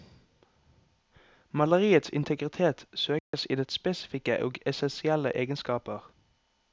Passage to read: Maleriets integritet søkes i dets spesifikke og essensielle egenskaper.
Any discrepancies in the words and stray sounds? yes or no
yes